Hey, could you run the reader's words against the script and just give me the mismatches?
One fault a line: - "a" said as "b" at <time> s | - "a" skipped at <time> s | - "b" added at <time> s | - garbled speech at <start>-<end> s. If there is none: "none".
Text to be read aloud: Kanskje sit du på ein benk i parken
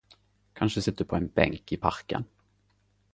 none